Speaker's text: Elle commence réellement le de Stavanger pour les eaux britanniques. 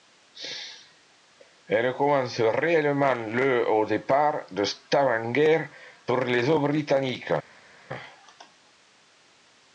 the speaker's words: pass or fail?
fail